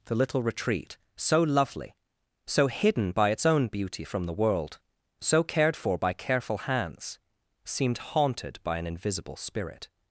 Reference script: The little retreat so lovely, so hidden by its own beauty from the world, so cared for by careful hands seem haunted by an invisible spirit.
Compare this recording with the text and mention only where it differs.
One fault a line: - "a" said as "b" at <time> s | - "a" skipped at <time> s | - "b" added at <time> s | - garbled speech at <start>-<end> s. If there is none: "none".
- "seem" said as "seemed" at 7.6 s